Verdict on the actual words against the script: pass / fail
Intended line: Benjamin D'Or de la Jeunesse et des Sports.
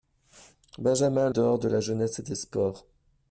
pass